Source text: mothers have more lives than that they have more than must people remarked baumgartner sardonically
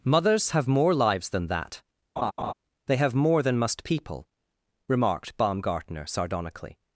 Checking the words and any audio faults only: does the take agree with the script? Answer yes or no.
no